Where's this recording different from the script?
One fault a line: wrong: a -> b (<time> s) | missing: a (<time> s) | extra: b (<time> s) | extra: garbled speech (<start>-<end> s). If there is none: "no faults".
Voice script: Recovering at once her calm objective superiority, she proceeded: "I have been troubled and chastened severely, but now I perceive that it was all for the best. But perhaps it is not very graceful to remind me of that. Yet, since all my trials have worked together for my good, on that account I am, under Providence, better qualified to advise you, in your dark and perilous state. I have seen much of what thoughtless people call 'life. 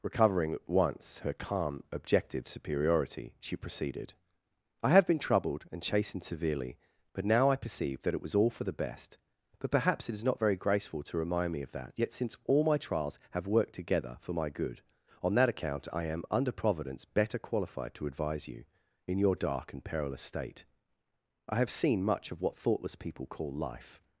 no faults